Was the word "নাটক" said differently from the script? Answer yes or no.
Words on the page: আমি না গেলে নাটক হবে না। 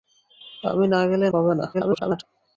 yes